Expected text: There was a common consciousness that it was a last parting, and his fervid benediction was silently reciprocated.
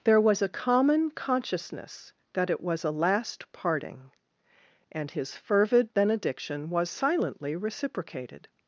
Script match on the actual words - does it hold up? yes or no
yes